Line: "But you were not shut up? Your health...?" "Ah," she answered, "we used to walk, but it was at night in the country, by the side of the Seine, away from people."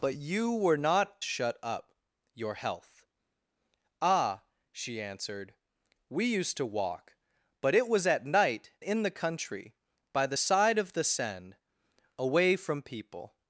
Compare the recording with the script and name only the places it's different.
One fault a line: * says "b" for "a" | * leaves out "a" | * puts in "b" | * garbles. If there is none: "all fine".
all fine